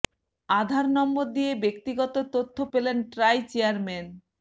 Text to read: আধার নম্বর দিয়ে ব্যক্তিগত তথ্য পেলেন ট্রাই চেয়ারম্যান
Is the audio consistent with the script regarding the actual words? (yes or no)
yes